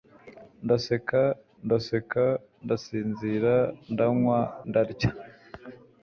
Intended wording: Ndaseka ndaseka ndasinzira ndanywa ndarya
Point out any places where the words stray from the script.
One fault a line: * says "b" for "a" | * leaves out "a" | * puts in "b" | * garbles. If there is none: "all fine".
all fine